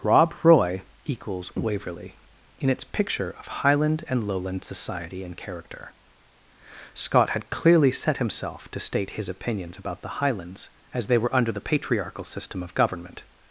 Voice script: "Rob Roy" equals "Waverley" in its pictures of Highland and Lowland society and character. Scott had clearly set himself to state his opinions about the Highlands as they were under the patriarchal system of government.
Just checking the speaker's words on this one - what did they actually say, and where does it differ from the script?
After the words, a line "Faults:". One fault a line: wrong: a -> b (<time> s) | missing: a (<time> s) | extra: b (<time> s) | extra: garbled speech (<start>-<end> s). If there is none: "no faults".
"Rob Roy" equals "Waverley" in its picture of Highland and Lowland society and character. Scott had clearly set himself to state his opinions about the Highlands as they were under the patriarchal system of government.
Faults:
wrong: pictures -> picture (2.8 s)